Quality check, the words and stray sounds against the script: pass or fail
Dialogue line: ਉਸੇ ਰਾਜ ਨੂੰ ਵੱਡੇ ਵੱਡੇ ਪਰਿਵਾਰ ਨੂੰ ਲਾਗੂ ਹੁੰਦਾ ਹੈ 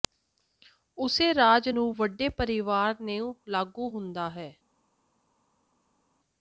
fail